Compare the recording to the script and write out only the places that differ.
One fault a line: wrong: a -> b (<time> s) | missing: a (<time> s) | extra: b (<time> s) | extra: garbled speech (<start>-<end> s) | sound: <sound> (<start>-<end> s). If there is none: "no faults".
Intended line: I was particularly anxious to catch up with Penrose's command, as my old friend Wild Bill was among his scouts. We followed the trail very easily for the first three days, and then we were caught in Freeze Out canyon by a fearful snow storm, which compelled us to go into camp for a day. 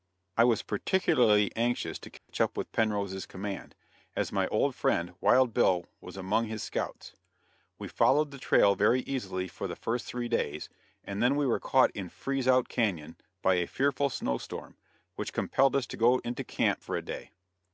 sound: dropout (2.2-2.3 s)